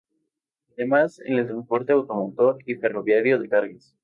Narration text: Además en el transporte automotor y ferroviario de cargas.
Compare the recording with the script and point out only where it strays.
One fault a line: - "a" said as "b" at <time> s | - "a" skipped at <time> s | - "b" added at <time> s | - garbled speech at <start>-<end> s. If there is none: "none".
none